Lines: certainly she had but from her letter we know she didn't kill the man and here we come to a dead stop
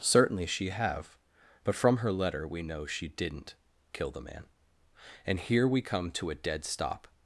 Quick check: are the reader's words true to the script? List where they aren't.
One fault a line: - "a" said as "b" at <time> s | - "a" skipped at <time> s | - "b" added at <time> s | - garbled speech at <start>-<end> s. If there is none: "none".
- "had" said as "have" at 0.7 s